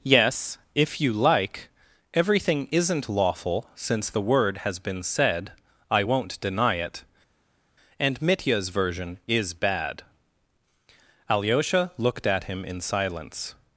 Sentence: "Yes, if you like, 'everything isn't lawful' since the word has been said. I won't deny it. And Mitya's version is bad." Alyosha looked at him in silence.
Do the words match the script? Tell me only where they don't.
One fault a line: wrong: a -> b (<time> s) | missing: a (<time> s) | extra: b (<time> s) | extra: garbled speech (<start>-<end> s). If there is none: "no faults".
no faults